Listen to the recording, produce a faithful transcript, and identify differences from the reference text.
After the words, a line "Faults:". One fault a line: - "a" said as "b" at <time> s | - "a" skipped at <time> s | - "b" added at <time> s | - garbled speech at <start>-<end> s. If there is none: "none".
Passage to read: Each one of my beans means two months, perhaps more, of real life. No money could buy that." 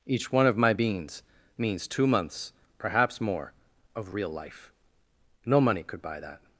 Each one of my beans means two months, perhaps more, of real life. No money could buy that."
Faults:
none